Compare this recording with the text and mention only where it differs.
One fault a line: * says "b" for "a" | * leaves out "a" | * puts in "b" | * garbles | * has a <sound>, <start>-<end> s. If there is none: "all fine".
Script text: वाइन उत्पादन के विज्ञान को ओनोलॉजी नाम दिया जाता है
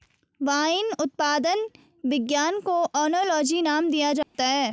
* leaves out "के"
* has a dropout, 4.2-4.3 s